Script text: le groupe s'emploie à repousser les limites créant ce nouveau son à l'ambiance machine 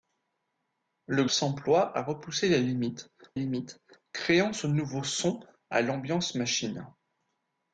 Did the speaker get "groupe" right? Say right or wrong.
wrong